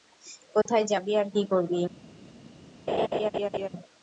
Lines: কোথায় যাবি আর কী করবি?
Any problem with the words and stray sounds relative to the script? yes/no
yes